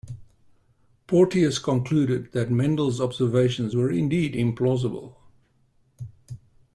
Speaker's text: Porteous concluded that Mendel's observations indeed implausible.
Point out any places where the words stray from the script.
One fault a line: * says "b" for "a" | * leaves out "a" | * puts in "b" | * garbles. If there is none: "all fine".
* puts in "were"